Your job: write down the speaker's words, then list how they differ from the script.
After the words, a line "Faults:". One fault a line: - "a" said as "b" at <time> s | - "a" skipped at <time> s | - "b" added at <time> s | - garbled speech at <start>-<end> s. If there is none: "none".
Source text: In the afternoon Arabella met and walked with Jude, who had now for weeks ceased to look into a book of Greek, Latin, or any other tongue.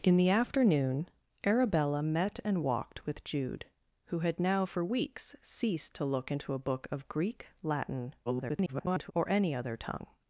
In the afternoon Arabella met and walked with Jude, who had now for weeks ceased to look into a book of Greek, Latin, [garbled] or any other tongue.
Faults:
- garbled speech at 8.3-9.1 s